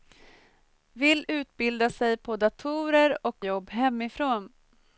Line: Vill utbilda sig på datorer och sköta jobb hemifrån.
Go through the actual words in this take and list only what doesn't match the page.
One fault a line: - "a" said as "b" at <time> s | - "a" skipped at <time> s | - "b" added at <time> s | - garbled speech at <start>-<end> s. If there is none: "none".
- "sköta" skipped at 3.4 s